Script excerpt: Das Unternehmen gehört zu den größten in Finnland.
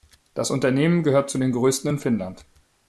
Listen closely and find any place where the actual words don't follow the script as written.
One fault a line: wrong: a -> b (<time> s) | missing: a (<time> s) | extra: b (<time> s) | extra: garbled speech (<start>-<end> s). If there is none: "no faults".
no faults